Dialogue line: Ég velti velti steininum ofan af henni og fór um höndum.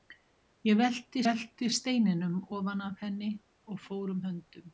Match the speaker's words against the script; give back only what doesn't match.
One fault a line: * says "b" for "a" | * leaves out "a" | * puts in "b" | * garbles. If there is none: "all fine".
all fine